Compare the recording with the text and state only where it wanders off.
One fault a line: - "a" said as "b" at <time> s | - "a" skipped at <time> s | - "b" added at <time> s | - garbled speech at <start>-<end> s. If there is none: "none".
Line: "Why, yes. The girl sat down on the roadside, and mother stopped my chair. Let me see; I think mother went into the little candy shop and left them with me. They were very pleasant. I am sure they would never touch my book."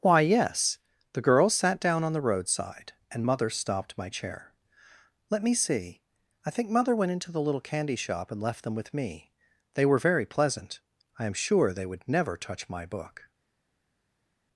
none